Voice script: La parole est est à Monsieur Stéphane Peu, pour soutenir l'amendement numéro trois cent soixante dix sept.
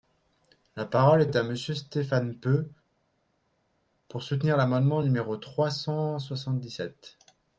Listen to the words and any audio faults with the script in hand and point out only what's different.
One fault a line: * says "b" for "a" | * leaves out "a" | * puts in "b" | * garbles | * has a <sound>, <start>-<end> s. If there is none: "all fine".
all fine